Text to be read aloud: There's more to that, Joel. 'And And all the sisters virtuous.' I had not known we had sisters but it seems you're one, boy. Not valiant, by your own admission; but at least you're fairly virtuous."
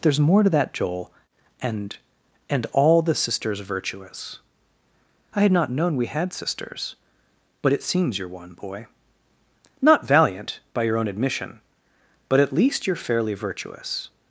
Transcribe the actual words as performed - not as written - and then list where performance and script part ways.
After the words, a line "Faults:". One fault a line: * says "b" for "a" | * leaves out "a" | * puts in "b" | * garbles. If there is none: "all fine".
There's more to that, Joel. 'And And all the sisters virtuous.' I had not known we had sisters but it seems you're one, boy. Not valiant, by your own admission; but at least you're fairly virtuous."
Faults:
all fine